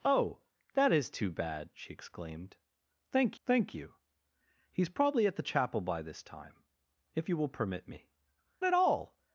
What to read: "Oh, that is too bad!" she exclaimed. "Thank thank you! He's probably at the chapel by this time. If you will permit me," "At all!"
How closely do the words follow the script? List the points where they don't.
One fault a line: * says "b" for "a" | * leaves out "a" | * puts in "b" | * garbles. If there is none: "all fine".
all fine